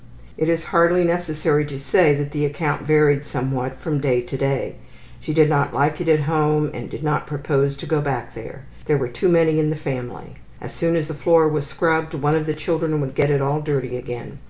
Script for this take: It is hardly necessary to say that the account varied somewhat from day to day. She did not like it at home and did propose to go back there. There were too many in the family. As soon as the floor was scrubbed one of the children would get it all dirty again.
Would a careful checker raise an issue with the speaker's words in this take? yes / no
yes